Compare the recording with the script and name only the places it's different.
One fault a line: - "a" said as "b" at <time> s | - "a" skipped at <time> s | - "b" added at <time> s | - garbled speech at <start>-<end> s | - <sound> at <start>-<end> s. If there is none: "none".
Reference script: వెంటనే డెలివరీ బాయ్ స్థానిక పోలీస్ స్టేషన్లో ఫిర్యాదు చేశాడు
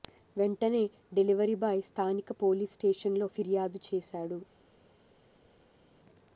none